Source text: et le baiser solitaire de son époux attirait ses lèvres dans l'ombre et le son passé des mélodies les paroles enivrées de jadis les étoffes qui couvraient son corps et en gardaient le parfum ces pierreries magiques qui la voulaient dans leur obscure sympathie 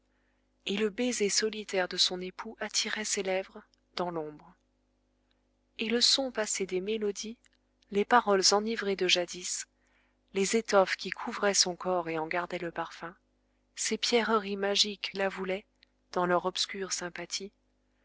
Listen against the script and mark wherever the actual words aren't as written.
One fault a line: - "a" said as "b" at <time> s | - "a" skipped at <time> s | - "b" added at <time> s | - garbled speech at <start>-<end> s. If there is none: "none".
- "qui" skipped at 15.2 s